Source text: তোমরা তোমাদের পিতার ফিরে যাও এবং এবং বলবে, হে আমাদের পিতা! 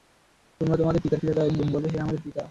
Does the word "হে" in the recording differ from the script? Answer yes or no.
no